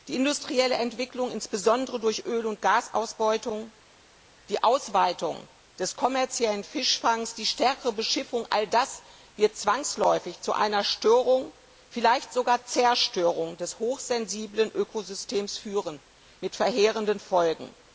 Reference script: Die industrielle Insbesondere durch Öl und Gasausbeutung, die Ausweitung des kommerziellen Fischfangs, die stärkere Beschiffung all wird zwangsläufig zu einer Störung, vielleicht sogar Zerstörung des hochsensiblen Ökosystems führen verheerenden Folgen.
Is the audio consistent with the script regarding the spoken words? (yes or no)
no